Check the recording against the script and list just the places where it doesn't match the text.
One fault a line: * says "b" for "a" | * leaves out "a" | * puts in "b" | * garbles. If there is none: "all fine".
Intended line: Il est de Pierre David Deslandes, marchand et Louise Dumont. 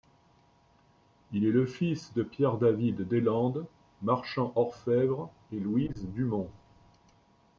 * puts in "le fils"
* puts in "orfèvre"